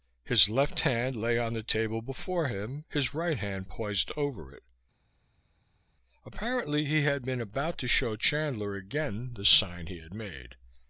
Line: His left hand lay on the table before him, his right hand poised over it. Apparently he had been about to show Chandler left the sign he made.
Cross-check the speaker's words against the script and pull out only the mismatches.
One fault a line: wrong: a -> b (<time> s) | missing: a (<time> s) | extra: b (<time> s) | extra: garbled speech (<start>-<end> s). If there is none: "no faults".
wrong: left -> again (8.8 s)
extra: had (10.0 s)